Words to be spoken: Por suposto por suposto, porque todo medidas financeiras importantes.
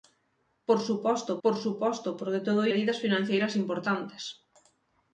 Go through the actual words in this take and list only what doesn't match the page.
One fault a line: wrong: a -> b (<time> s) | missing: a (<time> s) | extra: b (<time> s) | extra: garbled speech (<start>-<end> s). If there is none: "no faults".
no faults